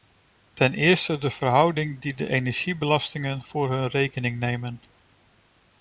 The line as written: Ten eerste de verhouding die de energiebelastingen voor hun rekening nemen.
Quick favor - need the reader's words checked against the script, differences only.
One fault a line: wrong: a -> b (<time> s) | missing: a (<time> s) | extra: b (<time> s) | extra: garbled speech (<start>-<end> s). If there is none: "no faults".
no faults